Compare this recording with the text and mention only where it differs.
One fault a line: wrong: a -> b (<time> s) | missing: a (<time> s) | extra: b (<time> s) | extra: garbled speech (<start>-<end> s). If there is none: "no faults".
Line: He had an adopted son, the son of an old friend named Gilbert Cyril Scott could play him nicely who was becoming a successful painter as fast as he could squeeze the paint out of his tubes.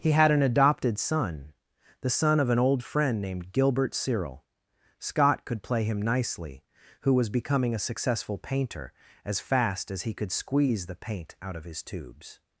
no faults